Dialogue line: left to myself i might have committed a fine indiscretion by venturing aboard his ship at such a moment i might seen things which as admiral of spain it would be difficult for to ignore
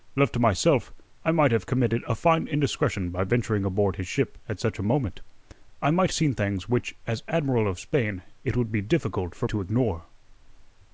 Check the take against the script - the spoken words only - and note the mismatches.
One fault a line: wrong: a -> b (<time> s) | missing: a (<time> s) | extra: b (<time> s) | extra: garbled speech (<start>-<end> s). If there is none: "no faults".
no faults